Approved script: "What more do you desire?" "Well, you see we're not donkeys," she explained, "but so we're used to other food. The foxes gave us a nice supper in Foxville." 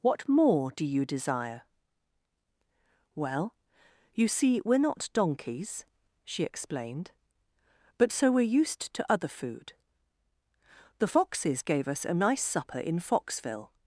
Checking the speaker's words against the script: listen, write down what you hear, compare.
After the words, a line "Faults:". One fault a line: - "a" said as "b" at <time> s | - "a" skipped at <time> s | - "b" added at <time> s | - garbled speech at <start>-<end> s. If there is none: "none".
"What more do you desire?" "Well, you see we're not donkeys," she explained, "but so we're used to other food. The foxes gave us a nice supper in Foxville."
Faults:
none